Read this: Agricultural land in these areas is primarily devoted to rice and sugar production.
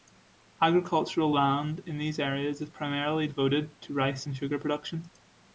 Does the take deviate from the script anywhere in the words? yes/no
no